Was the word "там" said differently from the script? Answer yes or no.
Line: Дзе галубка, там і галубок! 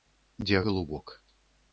yes